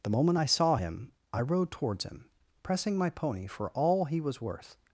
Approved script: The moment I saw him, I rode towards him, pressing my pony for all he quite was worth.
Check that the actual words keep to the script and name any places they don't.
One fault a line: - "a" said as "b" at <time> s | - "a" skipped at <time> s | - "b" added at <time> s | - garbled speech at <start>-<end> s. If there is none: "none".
- "quite" skipped at 4.2 s